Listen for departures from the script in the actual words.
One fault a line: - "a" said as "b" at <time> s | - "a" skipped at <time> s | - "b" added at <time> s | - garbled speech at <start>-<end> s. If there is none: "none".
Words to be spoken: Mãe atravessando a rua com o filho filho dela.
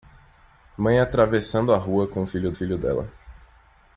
none